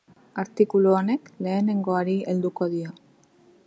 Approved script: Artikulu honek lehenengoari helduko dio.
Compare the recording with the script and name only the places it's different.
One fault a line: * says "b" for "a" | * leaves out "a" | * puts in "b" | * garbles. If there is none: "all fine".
all fine